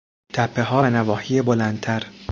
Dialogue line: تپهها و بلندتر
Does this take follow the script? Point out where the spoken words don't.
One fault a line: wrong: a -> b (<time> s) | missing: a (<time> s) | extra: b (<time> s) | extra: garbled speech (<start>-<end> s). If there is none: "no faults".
extra: نواحی (0.9 s)